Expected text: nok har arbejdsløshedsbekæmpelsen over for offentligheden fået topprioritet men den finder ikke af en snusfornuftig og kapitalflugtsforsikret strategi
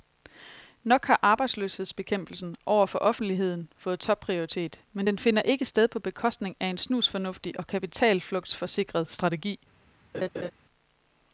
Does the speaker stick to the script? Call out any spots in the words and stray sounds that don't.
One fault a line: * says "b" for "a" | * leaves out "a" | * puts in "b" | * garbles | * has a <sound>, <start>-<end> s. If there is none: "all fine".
* puts in "sted på bekostning"
* has a laugh, 10.1-10.5 s